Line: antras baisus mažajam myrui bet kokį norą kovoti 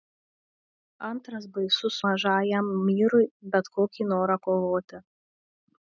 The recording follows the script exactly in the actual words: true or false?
true